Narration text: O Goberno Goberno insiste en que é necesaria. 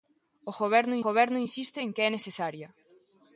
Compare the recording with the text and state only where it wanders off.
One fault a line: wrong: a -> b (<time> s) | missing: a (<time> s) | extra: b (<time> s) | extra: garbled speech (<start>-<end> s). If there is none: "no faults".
no faults